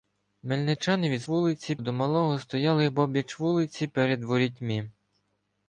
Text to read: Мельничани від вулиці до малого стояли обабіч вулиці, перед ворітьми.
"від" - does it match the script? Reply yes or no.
yes